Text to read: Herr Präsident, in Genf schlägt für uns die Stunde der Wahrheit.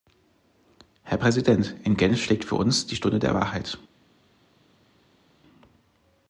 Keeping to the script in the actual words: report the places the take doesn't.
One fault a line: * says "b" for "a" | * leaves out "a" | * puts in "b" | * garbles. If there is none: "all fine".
all fine